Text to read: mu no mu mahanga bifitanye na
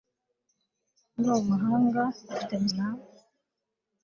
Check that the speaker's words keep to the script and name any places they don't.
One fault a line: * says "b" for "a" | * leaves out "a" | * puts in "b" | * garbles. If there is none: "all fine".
all fine